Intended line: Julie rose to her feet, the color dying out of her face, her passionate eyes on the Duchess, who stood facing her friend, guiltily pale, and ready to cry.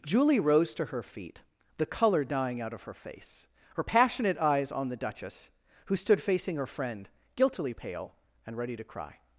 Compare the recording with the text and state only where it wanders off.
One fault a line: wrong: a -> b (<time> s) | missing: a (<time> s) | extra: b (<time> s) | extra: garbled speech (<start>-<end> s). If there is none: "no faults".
no faults